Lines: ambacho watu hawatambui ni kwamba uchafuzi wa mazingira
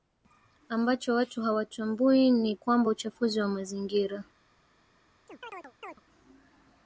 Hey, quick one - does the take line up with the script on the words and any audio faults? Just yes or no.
no